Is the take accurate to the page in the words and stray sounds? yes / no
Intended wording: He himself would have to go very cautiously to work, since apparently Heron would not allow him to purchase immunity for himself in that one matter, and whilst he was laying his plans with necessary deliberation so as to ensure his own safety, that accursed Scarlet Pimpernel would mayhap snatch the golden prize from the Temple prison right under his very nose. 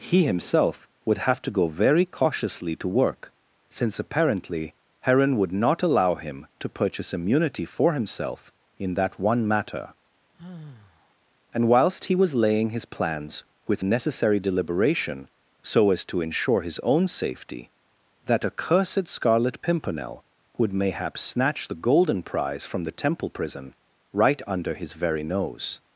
no